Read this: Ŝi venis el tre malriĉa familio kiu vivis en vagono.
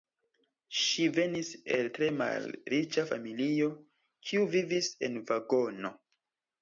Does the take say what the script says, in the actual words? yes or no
yes